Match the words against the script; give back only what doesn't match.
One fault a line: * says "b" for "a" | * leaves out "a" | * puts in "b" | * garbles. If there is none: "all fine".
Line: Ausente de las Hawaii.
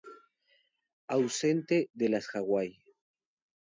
all fine